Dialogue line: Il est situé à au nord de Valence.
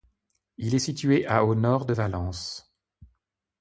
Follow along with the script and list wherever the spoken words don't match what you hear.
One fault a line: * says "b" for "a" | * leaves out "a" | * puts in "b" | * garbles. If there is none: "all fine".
all fine